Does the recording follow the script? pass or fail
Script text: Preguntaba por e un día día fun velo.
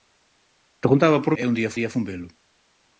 pass